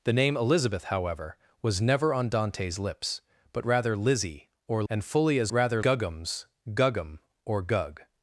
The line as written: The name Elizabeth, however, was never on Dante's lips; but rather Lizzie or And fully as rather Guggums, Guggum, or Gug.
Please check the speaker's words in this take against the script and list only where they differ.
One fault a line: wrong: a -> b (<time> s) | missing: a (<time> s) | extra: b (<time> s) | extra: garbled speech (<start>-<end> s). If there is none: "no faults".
no faults